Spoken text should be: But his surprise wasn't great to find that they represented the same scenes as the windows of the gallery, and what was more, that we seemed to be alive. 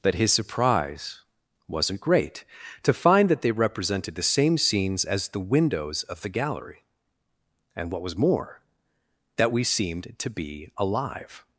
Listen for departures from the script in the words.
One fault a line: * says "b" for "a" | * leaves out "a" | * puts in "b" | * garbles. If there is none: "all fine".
all fine